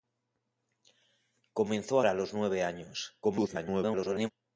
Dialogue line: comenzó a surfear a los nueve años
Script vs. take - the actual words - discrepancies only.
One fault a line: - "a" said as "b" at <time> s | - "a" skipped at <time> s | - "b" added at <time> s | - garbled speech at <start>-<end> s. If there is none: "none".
- "surfear" skipped at 2.0 s
- garbled speech at 3.2-4.3 s